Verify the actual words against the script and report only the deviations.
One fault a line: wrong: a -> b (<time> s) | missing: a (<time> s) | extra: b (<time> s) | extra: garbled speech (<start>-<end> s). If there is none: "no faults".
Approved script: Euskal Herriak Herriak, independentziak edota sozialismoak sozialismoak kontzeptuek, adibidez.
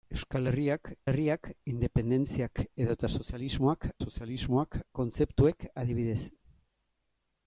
no faults